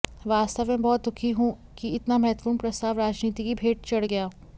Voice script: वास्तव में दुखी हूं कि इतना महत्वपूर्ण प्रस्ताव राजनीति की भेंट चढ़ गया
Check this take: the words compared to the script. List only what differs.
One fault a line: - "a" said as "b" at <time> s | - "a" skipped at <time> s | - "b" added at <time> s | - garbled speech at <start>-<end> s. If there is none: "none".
- "बहुत" added at 0.8 s